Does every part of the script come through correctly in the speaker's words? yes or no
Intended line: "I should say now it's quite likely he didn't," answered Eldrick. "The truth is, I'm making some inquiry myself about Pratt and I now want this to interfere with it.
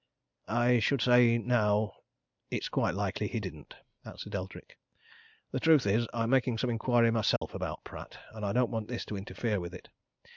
no